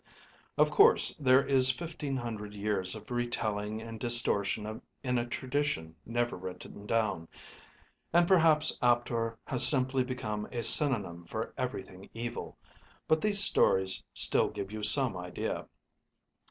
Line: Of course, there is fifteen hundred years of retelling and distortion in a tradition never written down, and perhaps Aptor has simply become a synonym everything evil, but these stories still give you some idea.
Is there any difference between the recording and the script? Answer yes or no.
yes